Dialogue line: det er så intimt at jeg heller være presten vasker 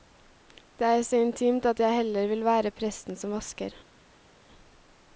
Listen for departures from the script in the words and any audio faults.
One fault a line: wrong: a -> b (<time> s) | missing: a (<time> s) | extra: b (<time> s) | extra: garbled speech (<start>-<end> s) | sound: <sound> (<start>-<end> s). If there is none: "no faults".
extra: vil (2.3 s)
extra: som (3.2 s)